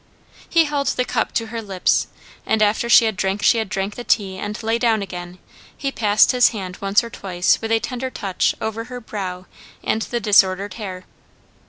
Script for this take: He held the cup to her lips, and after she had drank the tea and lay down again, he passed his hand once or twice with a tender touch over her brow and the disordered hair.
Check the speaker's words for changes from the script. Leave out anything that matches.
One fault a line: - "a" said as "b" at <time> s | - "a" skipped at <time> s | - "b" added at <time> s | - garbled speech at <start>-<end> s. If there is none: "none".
- "she had drank" added at 3.4 s